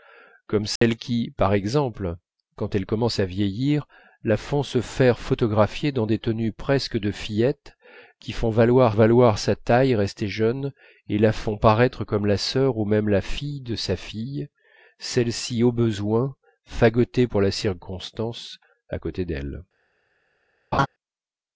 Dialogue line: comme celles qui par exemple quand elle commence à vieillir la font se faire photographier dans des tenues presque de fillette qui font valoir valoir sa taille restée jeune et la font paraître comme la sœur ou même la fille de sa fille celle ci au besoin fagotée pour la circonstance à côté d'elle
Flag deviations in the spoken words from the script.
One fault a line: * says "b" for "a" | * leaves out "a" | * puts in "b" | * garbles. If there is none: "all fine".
all fine